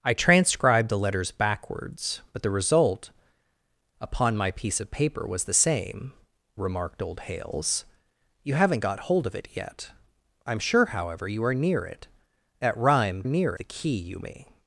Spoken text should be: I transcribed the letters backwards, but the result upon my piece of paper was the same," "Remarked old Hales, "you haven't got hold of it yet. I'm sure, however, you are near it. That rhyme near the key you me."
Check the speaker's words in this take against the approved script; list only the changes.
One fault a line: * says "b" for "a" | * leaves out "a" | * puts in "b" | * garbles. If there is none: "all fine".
all fine